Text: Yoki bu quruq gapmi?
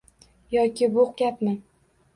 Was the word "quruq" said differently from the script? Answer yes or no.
yes